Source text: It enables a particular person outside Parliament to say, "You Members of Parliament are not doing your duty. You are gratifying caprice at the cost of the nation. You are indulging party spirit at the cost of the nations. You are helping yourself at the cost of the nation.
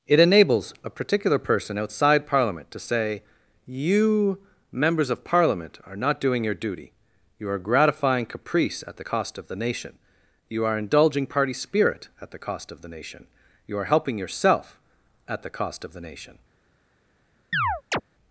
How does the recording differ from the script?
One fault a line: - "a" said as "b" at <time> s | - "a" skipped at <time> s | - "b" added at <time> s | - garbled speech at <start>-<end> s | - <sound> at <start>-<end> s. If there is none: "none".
- "nations" said as "nation" at 12.9 s
- chirp at 17.5-18.0 s